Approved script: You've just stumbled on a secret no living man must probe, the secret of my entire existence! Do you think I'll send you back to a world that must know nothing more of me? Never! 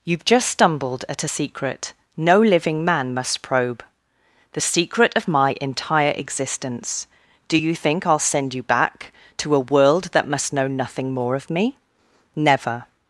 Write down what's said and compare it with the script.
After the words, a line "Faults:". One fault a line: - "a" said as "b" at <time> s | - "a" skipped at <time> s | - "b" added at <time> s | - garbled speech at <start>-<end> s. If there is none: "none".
You've just stumbled at a secret no living man must probe, the secret of my entire existence! Do you think I'll send you back to a world that must know nothing more of me? Never!
Faults:
- "on" said as "at" at 1.1 s